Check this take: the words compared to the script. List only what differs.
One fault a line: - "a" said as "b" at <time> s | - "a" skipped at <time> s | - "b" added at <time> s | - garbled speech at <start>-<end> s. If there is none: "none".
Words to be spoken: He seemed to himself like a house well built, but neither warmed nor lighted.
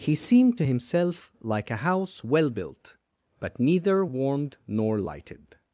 none